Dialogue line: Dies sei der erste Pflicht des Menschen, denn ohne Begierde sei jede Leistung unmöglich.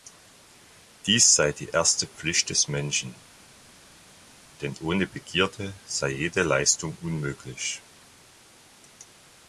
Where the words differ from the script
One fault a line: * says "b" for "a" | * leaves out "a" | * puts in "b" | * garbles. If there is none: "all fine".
* says "die" for "der"